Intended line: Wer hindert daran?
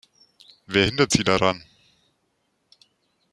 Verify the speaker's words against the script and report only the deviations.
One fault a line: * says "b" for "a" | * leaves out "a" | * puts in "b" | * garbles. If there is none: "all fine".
* puts in "sie"